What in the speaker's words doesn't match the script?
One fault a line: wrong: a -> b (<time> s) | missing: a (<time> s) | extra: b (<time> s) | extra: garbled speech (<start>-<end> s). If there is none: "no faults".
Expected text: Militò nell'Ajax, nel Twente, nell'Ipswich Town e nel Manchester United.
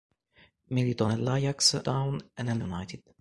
missing: nel Twente nell'Ipswich (1.9 s)
missing: Manchester (2.6 s)